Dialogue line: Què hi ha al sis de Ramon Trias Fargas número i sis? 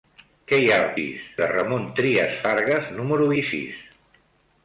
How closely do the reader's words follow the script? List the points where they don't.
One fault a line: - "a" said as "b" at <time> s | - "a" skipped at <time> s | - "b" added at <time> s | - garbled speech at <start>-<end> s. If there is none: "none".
none